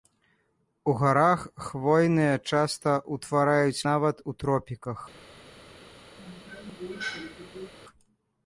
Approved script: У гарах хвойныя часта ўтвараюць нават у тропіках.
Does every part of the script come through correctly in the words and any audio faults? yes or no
no